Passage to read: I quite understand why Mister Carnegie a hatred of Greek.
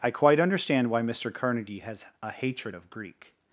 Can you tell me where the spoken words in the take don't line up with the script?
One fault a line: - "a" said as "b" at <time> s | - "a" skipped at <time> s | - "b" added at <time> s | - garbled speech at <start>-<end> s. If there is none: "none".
- "has" added at 1.9 s